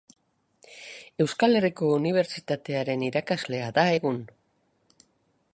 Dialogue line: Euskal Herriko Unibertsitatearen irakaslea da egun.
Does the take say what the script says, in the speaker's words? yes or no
yes